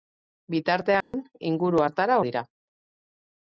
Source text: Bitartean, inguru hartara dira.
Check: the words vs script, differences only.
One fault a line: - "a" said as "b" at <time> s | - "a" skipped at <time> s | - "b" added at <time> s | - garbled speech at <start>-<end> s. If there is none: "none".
none